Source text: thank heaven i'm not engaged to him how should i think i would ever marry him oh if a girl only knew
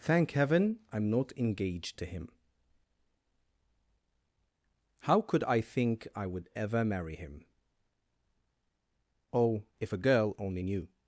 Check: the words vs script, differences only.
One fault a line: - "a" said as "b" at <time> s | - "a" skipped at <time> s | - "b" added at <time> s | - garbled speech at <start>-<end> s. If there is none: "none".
- "should" said as "could" at 5.2 s